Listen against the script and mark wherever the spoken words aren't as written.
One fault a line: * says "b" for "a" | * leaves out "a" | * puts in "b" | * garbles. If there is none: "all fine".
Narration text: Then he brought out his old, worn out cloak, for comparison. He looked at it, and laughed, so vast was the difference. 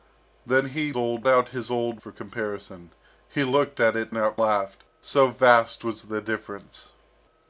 * says "old" for "brought"
* leaves out "worn out cloak"
* says "out" for "and"